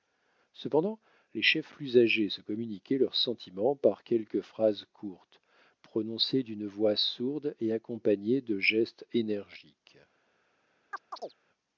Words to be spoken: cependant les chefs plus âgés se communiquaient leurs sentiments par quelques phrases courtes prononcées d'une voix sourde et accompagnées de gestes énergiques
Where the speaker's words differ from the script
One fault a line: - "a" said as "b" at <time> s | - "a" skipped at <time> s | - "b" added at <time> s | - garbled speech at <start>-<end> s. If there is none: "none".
none